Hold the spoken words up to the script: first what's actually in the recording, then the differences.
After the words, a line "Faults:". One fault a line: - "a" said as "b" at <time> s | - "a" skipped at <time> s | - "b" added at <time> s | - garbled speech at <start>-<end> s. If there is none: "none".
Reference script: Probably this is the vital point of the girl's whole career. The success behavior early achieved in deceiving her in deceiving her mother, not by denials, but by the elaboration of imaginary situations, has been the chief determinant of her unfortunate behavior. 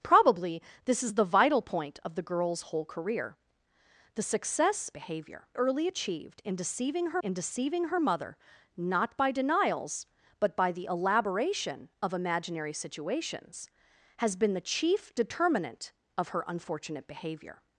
Probably this is the vital point of the girl's whole career. The success behavior early achieved in deceiving her in deceiving her mother, not by denials, but by the elaboration of imaginary situations, has been the chief determinant of her unfortunate behavior.
Faults:
none